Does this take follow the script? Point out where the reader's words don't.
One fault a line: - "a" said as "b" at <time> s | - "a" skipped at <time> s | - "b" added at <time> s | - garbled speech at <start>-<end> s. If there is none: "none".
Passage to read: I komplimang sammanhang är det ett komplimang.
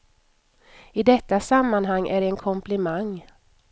- "komplimang" said as "detta" at 1.0 s
- "ett" said as "en" at 2.3 s